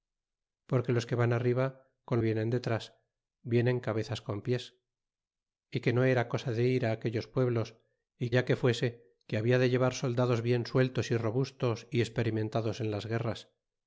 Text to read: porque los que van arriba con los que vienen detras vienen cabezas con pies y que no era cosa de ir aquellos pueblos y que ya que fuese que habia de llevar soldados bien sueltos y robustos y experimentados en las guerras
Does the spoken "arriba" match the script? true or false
true